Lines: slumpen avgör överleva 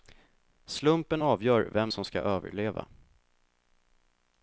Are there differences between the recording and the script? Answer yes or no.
yes